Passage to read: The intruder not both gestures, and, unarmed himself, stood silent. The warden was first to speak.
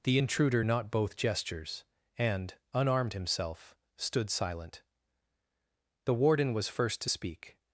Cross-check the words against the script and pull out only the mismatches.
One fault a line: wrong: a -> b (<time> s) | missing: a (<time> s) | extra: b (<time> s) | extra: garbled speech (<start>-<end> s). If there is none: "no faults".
no faults